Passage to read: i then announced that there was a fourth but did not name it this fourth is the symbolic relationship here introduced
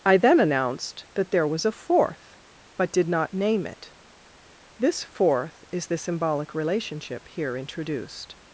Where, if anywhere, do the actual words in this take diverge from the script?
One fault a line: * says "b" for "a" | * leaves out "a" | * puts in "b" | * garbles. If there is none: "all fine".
all fine